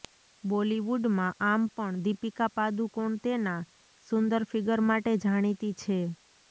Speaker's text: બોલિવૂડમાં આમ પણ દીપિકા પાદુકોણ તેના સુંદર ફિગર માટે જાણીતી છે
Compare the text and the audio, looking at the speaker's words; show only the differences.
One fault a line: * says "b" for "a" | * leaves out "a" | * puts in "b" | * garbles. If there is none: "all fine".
all fine